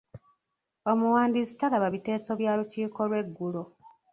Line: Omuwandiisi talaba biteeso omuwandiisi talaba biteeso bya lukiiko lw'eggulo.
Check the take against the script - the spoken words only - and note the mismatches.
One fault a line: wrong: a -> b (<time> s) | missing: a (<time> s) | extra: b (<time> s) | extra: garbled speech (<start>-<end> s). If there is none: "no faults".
missing: omuwandiisi talaba biteeso (2.3 s)